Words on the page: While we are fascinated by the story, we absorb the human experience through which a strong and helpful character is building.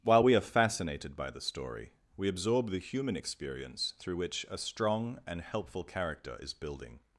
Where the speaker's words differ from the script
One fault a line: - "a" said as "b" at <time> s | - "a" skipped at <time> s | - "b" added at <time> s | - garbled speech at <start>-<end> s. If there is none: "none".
none